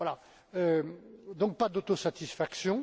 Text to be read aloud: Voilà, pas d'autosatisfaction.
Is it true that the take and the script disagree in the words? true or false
true